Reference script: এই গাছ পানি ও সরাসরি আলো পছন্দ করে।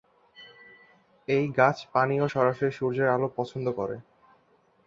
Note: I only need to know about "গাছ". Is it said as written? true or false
true